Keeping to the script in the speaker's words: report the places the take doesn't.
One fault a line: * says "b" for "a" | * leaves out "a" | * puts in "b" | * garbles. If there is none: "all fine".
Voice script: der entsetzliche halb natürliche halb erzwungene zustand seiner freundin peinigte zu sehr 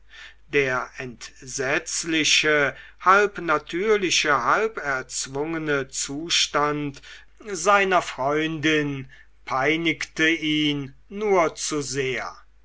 * puts in "ihn nur"